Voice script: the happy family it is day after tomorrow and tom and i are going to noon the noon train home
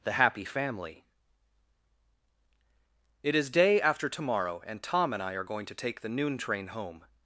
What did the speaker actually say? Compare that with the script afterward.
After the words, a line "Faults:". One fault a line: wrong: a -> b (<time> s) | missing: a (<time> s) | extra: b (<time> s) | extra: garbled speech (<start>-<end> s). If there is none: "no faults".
the happy family it is day after tomorrow and tom and i are going to take the noon train home
Faults:
wrong: noon -> take (5.8 s)